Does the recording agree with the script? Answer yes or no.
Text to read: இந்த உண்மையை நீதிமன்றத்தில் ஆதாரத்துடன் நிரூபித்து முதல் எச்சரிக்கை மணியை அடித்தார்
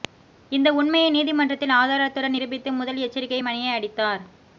yes